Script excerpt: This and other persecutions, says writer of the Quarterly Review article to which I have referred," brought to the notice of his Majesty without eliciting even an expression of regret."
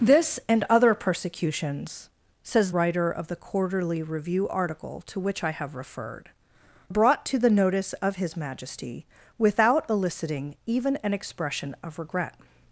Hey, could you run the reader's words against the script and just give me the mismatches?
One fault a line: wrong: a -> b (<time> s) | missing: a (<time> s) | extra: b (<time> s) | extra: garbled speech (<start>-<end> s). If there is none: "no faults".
no faults